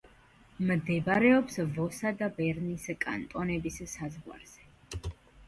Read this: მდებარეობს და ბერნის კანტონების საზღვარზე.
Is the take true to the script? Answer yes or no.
no